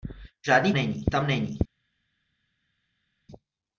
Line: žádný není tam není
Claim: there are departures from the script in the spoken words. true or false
false